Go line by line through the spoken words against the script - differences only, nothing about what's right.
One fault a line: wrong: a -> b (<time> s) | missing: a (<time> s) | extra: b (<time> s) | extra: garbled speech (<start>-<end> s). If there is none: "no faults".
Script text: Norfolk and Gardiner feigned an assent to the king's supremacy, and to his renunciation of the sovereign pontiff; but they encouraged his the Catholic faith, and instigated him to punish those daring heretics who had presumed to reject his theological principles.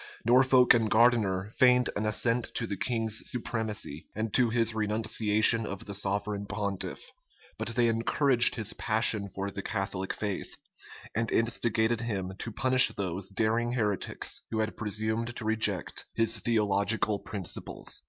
extra: passion for (8.7 s)